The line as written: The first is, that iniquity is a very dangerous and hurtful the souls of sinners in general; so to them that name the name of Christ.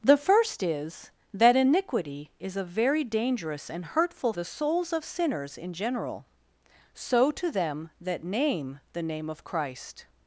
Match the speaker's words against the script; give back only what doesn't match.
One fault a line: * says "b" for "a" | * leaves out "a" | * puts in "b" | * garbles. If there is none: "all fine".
all fine